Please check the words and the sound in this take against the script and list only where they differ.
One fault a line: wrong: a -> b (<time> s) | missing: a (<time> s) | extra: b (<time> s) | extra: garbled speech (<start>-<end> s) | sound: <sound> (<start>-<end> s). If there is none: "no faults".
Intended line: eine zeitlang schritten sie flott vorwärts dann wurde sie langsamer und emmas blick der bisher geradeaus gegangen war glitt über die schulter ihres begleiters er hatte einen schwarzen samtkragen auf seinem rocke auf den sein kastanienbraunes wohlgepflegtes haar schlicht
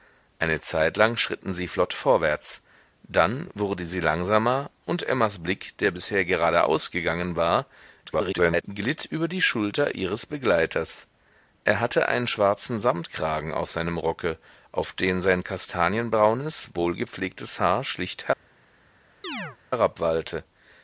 extra: garbled speech (8.0-8.6 s)
sound: chirp (19.2-19.6 s)